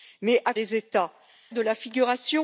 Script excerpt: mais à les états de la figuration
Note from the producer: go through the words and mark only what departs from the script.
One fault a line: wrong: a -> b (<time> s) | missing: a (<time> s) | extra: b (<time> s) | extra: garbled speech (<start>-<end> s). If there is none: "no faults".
no faults